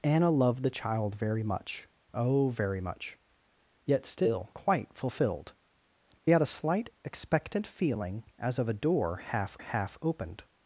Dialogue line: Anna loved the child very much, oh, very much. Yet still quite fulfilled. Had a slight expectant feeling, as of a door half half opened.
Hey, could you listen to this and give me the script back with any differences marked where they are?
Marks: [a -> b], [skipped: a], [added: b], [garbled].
Anna loved the child very much, oh, very much. Yet still quite fulfilled. Had a slight expectant feeling, as of a door half half opened.